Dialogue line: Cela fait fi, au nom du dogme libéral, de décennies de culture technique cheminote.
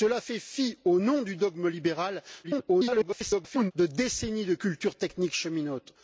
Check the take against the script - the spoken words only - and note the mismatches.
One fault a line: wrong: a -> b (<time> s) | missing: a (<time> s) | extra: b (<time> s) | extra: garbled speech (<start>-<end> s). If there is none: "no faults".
extra: garbled speech (2.4-3.7 s)